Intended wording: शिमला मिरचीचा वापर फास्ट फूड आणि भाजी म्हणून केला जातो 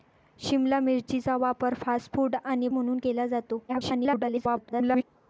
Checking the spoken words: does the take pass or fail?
fail